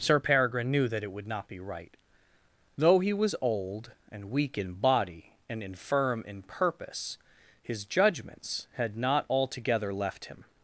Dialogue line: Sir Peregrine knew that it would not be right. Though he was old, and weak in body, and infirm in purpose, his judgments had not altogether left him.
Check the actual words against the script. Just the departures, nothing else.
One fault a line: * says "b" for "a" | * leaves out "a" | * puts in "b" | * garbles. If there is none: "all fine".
all fine